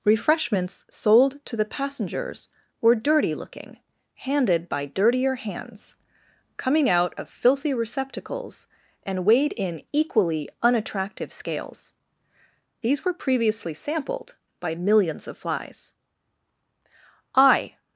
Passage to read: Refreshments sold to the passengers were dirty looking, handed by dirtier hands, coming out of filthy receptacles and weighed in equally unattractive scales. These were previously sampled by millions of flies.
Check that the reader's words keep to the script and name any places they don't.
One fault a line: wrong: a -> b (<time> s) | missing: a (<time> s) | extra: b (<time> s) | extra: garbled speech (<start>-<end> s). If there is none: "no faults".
extra: I (17.4 s)